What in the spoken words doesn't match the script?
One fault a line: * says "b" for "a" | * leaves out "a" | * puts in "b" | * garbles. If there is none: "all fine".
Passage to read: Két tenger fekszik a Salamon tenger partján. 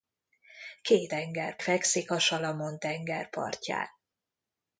all fine